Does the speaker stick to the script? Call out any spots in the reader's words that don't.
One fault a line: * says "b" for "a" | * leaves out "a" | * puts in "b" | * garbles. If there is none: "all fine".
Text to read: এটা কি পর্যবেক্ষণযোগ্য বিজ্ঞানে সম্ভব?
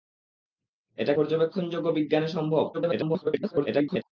* leaves out "কি"
* garbles